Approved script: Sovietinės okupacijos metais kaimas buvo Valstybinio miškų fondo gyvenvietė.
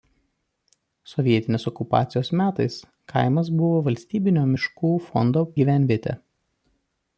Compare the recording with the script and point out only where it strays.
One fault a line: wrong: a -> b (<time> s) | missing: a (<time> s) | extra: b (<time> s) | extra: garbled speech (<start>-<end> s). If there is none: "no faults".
no faults